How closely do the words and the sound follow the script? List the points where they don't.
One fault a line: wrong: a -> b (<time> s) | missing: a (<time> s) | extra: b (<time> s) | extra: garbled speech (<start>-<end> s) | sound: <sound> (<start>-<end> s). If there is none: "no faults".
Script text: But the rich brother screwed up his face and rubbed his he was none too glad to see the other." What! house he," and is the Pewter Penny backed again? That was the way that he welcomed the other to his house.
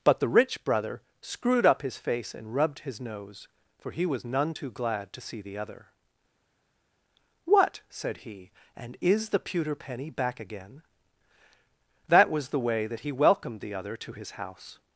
extra: nose for (3.0 s)
wrong: house -> said (7.9 s)
wrong: backed -> back (10.1 s)